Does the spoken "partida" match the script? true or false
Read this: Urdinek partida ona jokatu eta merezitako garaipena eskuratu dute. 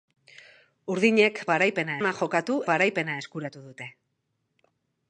false